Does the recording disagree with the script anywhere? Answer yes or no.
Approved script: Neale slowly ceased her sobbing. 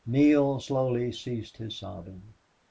yes